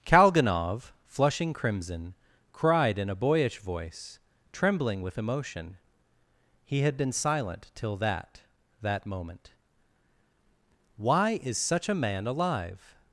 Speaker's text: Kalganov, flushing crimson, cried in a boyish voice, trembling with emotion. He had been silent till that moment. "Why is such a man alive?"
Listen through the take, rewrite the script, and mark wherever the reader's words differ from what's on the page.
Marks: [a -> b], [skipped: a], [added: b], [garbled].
Kalganov, flushing crimson, cried in a boyish voice, trembling with emotion. He had been silent till that [added: that] moment. "Why is such a man alive?"